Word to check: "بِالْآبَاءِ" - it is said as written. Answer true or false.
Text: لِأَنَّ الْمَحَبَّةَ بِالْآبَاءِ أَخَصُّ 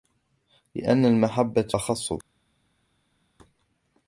false